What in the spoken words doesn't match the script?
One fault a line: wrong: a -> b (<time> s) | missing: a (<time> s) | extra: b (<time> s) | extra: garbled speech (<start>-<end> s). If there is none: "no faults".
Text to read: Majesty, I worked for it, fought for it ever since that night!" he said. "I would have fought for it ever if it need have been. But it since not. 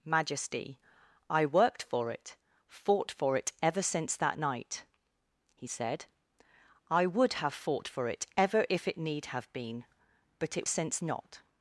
no faults